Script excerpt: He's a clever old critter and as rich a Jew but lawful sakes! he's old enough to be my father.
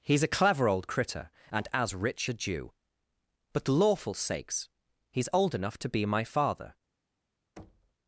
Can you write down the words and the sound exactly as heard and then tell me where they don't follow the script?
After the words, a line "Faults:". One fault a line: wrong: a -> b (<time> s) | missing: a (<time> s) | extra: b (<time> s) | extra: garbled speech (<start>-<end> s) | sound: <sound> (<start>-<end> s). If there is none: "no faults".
He's a clever old critter and as rich a Jew but lawful sakes! he's old enough to be my father.
Faults:
sound: thud (7.6-7.9 s)